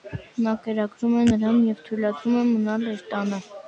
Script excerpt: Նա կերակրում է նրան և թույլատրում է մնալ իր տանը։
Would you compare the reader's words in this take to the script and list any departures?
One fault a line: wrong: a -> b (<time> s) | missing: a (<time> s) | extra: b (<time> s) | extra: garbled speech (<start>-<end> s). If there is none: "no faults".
no faults